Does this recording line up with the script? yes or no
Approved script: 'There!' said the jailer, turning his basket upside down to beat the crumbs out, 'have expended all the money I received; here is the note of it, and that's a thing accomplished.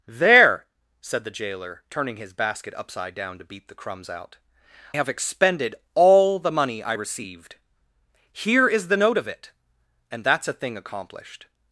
yes